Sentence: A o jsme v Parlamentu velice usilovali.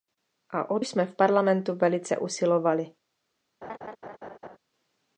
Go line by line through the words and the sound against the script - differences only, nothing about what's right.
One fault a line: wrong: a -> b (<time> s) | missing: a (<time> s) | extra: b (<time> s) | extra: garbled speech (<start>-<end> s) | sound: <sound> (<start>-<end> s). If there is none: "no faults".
sound: laugh (3.6-4.6 s)